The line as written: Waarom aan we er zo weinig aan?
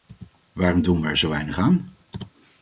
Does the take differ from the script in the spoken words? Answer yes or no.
yes